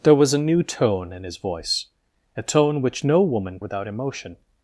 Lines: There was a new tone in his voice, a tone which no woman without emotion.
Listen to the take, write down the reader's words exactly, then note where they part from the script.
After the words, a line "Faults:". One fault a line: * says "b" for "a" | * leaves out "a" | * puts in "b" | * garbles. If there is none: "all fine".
There was a new tone in his voice, a tone which no woman without emotion.
Faults:
all fine